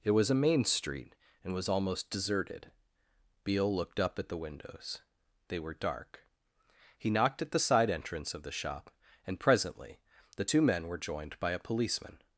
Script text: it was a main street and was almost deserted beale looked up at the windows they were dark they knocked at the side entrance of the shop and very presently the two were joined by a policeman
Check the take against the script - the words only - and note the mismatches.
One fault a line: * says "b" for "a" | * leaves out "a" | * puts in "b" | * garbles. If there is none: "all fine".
* says "he" for "they"
* leaves out "very"
* puts in "men"